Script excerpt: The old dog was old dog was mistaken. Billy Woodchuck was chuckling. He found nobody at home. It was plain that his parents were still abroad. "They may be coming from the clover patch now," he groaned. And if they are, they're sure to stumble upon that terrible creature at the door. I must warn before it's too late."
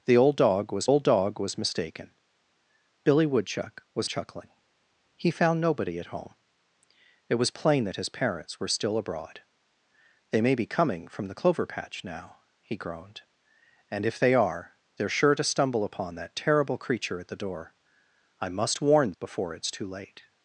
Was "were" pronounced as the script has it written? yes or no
yes